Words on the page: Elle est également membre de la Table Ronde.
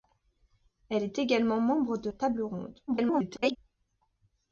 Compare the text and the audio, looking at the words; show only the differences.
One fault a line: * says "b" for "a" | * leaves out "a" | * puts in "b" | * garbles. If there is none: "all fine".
* leaves out "la"
* garbles